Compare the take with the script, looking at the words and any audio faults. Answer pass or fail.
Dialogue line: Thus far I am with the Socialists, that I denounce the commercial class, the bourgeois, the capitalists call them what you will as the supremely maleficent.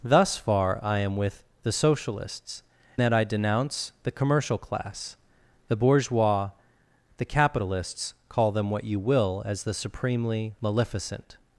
pass